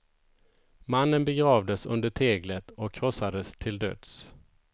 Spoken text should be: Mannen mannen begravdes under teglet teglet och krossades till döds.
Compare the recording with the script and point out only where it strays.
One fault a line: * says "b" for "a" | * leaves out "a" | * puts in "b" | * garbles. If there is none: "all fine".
* leaves out "mannen"
* leaves out "teglet"